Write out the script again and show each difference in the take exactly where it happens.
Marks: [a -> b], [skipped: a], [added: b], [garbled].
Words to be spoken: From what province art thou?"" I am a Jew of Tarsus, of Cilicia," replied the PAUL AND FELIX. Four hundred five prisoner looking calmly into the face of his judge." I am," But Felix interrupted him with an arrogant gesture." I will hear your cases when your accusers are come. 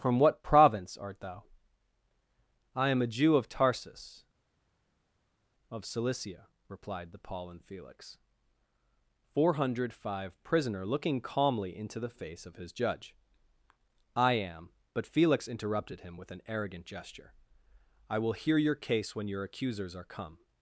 From what province art thou?"" I am a Jew of Tarsus, of Cilicia," replied the PAUL AND FELIX. Four hundred five prisoner looking calmly into the face of his judge." I am," But Felix interrupted him with an arrogant gesture." I will hear your [cases -> case] when your accusers are come.